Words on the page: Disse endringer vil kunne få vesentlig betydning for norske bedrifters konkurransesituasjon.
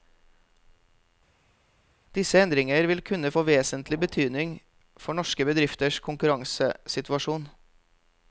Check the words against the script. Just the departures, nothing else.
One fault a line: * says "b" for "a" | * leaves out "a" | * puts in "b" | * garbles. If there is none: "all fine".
all fine